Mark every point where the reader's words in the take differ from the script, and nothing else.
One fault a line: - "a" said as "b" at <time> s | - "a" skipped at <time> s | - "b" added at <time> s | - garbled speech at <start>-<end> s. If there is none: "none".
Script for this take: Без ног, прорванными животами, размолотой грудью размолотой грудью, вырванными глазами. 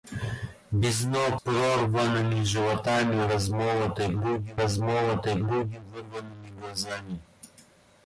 none